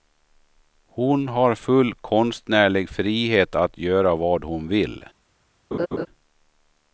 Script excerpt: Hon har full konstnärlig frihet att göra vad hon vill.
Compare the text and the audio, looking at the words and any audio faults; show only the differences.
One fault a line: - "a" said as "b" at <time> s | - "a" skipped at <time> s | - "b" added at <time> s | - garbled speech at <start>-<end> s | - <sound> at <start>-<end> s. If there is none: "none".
- laugh at 5.7-6.1 s